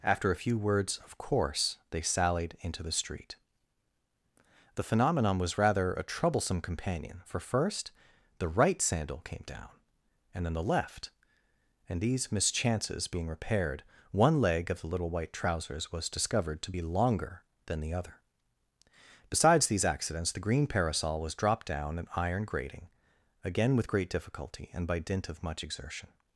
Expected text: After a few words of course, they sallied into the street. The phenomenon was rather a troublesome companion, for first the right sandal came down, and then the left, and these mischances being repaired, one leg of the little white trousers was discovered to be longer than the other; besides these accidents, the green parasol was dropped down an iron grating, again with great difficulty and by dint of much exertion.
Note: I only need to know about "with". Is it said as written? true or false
true